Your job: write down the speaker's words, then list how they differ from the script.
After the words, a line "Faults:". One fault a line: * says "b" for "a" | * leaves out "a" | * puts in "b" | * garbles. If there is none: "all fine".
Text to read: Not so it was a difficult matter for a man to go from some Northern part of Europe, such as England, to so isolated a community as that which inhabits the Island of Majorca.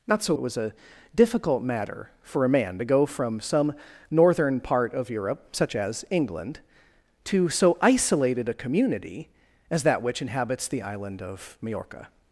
Not so it was a difficult matter for a man to go from some Northern part of Europe, such as England, to so isolated a community as that which inhabits the Island of Majorca.
Faults:
all fine